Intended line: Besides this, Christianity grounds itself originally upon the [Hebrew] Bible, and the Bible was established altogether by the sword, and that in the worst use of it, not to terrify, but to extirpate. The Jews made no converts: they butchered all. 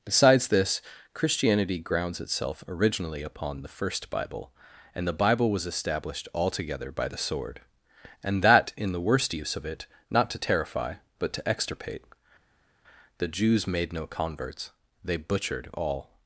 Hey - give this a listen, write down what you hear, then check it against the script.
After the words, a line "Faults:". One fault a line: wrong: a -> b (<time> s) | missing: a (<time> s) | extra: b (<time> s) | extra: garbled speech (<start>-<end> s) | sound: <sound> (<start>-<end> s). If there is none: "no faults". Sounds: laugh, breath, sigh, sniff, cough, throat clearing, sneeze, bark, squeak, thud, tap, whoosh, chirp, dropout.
Besides this, Christianity grounds itself originally upon the [First] Bible, and the Bible was established altogether by the sword, and that in the worst use of it, not to terrify, but to extirpate. The Jews made no converts: they butchered all.
Faults:
wrong: Hebrew -> First (3.7 s)